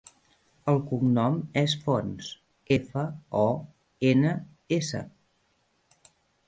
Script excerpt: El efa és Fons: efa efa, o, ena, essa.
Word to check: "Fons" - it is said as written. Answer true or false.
true